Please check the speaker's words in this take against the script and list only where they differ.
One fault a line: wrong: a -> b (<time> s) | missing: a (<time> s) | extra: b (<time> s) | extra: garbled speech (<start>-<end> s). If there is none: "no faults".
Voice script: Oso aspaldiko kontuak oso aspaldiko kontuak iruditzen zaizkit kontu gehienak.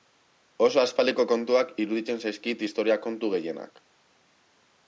missing: oso aspaldiko kontuak (1.7 s)
extra: historia (2.7 s)